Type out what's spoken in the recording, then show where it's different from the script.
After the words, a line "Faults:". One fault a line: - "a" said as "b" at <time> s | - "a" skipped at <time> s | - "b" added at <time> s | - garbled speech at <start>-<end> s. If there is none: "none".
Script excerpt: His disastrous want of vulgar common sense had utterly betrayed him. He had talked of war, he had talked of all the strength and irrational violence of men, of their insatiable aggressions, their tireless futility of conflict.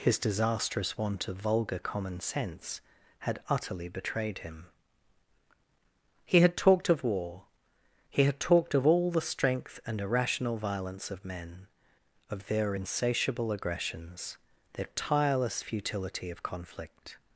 His disastrous want of vulgar common sense had utterly betrayed him. He had talked of war, he had talked of all the strength and irrational violence of men, of their insatiable aggressions, their tireless futility of conflict.
Faults:
none